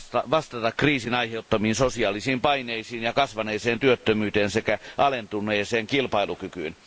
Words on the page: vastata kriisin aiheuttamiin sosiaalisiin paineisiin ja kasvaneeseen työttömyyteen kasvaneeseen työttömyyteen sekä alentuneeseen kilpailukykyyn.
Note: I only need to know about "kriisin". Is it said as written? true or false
true